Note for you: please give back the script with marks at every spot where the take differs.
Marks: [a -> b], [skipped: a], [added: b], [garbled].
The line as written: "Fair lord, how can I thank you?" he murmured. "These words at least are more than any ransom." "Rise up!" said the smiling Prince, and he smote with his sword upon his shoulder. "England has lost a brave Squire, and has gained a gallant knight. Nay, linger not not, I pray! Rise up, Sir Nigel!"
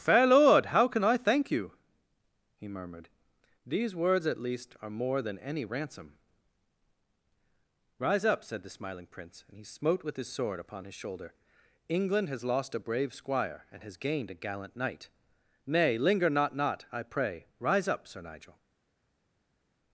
"Fair lord, how can I thank you?" he murmured. "These words at least are more than any ransom." "Rise up!" said the smiling Prince, and he smote with his sword upon his shoulder. "England has lost a brave Squire, and has gained a gallant knight. Nay, linger not not, I pray! Rise up, Sir Nigel!"